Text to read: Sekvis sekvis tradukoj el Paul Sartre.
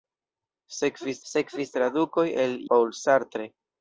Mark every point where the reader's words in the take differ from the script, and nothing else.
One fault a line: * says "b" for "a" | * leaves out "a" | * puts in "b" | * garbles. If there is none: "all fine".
all fine